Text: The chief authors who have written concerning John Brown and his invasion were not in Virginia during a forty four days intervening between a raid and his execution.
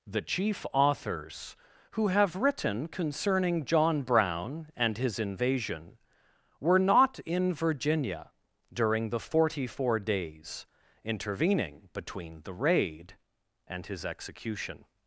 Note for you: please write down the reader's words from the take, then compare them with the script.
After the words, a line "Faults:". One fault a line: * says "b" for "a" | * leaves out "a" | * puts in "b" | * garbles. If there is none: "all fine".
The chief authors who have written concerning John Brown and his invasion were not in Virginia during the forty four days intervening between the raid and his execution.
Faults:
* says "the" for "a"
* says "the" for "a"